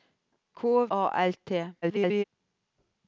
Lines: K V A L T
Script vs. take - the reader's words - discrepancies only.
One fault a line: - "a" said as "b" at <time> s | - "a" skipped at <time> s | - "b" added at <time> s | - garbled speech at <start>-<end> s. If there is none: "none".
- "V" skipped at 0.9 s
- garbled speech at 1.8-2.2 s